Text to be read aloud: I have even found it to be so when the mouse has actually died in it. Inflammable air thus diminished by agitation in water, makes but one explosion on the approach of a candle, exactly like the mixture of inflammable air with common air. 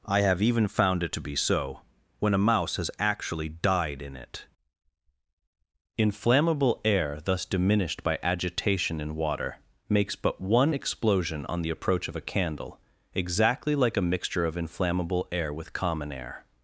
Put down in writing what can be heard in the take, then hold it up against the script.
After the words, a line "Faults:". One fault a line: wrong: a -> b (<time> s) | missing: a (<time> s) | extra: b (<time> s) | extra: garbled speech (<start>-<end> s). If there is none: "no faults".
I have even found it to be so when a mouse has actually died in it. Inflammable air thus diminished by agitation in water, makes but one explosion on the approach of a candle, exactly like a mixture of inflammable air with common air.
Faults:
wrong: the -> a (2.3 s)
wrong: the -> a (14.0 s)